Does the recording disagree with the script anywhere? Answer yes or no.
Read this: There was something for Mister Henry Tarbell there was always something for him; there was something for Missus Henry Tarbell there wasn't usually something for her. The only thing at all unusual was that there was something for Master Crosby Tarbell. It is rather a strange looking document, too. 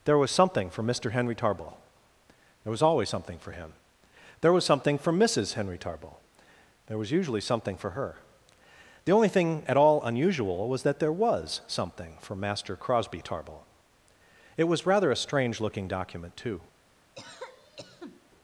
yes